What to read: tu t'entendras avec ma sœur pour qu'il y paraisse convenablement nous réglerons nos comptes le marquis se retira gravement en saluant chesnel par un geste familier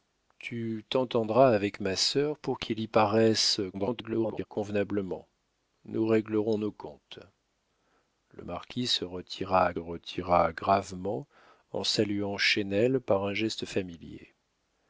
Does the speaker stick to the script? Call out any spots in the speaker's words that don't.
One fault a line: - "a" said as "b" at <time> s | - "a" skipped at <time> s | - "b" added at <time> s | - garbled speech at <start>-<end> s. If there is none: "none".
- garbled speech at 3.7-4.5 s
- "retira" added at 9.8 s